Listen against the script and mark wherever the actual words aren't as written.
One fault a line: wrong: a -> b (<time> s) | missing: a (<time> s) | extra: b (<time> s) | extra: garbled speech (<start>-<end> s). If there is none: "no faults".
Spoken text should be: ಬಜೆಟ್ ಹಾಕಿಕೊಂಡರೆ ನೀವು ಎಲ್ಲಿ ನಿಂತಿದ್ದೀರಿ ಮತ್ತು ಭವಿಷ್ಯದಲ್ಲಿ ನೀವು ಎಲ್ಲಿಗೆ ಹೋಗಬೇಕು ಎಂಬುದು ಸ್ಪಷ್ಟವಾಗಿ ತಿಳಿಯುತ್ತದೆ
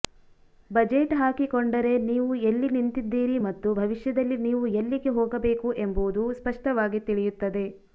no faults